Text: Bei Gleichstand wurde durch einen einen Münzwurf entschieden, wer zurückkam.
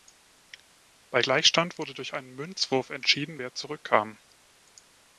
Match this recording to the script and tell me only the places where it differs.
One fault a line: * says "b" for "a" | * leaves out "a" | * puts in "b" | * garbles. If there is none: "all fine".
* leaves out "einen"